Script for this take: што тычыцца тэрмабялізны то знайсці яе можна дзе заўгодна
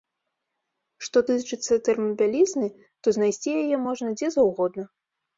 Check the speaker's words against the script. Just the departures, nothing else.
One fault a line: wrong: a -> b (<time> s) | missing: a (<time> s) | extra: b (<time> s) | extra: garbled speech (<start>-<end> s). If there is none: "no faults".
no faults